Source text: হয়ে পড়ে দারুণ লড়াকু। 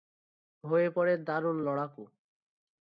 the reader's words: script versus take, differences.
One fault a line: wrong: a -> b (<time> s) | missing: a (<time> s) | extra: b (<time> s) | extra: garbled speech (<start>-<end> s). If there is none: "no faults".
no faults